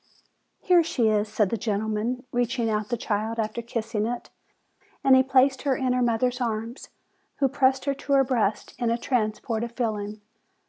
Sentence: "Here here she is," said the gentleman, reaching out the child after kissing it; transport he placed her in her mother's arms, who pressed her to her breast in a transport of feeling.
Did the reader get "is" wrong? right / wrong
right